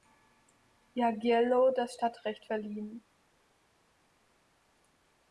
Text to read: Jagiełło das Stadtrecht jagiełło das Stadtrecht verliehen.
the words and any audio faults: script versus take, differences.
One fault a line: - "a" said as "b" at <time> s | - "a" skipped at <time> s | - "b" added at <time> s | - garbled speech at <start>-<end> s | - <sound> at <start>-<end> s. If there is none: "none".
- "jagiełło das Stadtrecht" skipped at 2.5 s